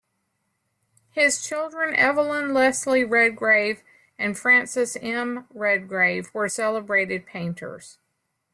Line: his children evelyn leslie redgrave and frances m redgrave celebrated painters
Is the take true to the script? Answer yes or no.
no